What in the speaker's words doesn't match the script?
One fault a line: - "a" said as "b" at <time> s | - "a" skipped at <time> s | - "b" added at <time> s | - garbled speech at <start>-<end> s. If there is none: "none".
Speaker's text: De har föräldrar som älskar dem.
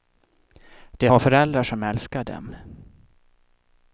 none